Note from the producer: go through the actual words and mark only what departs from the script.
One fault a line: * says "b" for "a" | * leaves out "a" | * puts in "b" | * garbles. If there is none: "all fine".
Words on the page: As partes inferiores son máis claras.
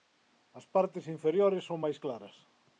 all fine